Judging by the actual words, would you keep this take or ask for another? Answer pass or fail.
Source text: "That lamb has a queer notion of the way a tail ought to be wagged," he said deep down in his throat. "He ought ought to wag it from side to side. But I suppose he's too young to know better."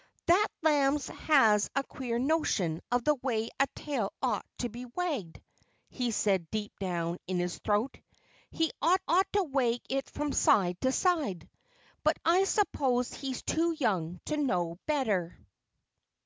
pass